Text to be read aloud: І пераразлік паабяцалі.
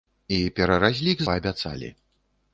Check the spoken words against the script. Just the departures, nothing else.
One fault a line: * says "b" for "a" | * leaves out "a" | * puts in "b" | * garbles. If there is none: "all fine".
all fine